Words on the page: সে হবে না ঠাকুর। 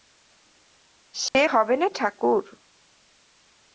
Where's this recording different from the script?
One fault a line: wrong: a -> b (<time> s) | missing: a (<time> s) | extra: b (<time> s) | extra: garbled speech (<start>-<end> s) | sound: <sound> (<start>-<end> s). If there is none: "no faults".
sound: dropout (1.3-1.3 s)